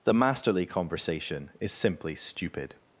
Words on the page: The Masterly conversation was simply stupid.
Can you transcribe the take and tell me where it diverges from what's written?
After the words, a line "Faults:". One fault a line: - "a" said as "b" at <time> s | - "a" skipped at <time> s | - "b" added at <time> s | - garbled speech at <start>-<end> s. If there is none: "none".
The Masterly conversation is simply stupid.
Faults:
- "was" said as "is" at 1.6 s